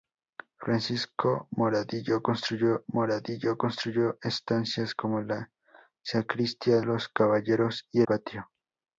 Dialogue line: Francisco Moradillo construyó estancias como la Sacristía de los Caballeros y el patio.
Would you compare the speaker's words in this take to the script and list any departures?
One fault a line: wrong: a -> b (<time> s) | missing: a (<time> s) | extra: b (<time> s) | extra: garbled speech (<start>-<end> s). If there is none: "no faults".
extra: Moradillo construyó (2.9 s)
missing: de (6.8 s)
missing: el (8.0 s)